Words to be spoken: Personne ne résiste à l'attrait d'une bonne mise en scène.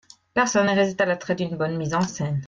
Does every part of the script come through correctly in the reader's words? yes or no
yes